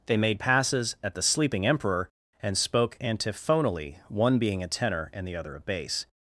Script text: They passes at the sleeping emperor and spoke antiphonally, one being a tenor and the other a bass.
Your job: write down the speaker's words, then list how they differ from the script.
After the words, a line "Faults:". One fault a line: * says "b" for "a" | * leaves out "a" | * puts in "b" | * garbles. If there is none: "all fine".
They made passes at the sleeping emperor and spoke antiphonally, one being a tenor and the other a bass.
Faults:
* puts in "made"